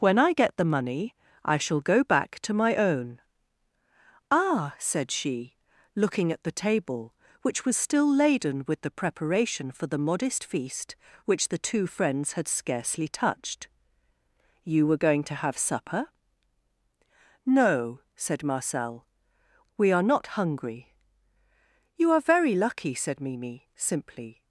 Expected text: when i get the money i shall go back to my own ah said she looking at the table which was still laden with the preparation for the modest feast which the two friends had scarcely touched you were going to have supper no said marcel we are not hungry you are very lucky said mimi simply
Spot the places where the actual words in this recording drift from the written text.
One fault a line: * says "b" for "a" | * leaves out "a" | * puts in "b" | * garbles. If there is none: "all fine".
all fine